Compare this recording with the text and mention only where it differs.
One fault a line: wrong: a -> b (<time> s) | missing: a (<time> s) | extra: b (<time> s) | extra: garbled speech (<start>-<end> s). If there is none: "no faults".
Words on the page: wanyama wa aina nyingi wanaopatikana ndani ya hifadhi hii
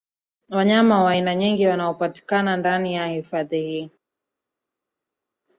no faults